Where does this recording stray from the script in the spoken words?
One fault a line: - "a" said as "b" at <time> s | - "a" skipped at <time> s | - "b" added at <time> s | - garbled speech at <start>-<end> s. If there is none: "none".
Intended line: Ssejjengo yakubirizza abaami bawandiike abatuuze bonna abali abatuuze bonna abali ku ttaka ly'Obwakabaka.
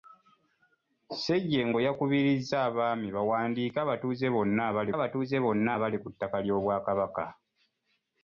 none